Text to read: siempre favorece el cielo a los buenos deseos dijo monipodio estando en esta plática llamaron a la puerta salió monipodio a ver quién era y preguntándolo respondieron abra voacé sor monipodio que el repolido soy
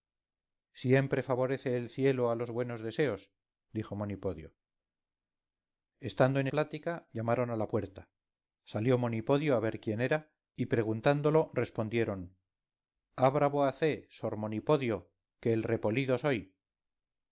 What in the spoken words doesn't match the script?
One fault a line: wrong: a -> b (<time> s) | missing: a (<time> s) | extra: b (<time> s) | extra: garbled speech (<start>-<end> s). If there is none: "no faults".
missing: esta (6.5 s)